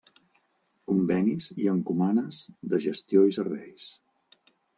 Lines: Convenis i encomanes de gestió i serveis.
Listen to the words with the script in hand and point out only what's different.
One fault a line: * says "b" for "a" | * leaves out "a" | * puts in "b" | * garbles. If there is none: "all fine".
all fine